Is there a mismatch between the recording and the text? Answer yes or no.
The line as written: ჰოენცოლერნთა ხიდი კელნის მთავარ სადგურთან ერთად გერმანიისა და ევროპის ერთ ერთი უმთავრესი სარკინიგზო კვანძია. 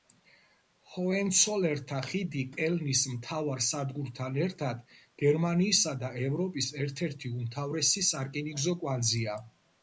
no